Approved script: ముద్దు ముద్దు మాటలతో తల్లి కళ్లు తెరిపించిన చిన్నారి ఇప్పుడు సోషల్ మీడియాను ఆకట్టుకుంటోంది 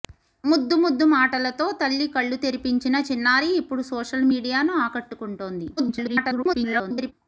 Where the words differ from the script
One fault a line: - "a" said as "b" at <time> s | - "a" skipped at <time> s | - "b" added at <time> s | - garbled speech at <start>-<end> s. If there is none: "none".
- garbled speech at 5.8-7.1 s